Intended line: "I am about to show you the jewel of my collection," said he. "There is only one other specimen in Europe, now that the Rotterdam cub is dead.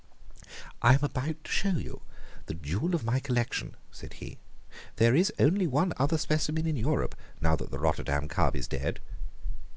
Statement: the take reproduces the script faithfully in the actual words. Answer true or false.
true